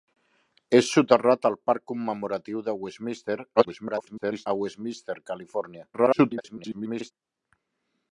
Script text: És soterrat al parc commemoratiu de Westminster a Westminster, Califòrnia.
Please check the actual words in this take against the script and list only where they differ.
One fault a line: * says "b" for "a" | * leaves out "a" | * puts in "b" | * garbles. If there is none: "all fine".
* garbles
* garbles